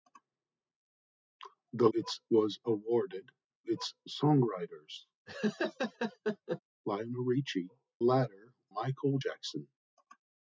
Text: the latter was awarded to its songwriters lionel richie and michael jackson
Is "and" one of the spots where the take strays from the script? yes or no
yes